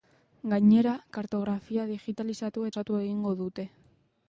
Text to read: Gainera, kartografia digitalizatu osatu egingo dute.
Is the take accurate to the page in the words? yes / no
yes